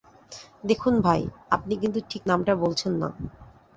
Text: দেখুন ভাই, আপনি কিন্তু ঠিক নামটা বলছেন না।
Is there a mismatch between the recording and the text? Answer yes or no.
no